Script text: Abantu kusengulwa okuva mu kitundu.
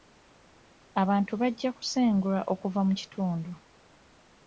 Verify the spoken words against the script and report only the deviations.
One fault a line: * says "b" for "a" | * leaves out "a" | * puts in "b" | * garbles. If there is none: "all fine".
* puts in "bajja"